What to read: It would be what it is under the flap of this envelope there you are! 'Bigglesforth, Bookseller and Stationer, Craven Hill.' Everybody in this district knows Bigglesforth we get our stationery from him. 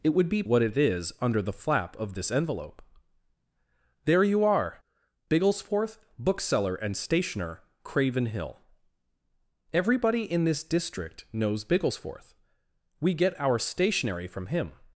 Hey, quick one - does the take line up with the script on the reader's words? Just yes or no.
yes